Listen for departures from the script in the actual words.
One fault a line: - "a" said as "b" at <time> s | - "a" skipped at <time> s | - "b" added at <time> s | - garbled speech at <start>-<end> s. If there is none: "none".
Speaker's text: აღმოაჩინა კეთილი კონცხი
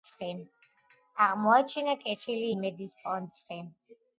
- "იმედის" added at 2.5 s